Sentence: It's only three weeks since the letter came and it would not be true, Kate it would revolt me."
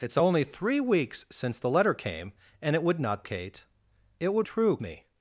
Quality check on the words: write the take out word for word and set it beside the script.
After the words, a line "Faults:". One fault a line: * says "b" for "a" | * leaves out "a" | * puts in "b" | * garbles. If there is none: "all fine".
It's only three weeks since the letter came and it would not Kate it would true me."
Faults:
* leaves out "be true"
* says "true" for "revolt"